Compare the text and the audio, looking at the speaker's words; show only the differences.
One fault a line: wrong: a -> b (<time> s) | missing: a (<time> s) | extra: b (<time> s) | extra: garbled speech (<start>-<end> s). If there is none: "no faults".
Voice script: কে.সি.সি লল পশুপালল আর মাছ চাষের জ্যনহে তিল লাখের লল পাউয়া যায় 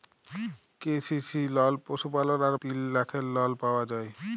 missing: মাছ চাষের জ্যনহে (2.5 s)